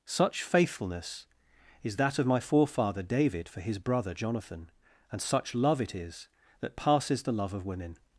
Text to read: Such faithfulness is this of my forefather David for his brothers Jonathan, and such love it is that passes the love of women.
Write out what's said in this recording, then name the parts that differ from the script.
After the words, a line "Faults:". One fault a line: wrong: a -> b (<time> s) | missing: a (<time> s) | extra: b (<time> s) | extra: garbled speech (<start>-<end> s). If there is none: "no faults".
Such faithfulness is that of my forefather David for his brother Jonathan, and such love it is that passes the love of women.
Faults:
wrong: this -> that (1.9 s)
wrong: brothers -> brother (3.8 s)